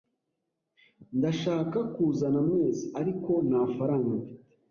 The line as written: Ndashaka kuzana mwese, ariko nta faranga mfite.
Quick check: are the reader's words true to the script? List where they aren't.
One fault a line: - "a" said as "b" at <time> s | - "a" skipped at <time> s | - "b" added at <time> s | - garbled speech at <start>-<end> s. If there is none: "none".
none